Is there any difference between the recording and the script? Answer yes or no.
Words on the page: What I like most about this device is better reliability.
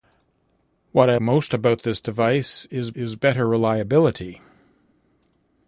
yes